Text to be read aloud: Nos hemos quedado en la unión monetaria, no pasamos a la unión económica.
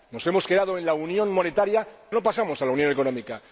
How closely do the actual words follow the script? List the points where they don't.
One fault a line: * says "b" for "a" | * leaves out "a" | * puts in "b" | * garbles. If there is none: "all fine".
all fine